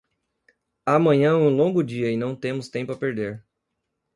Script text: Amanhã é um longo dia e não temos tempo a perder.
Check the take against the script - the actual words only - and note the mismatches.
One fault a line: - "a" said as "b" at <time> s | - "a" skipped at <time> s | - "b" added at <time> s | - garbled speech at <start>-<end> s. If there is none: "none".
none